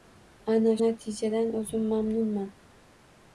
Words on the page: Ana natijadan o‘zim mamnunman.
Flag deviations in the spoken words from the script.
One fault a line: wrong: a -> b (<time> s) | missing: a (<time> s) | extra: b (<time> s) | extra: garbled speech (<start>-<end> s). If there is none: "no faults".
no faults